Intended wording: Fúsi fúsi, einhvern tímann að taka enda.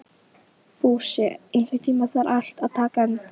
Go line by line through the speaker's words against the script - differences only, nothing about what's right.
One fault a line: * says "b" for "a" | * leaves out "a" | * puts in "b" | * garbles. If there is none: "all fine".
* leaves out "fúsi"
* puts in "þarf allt"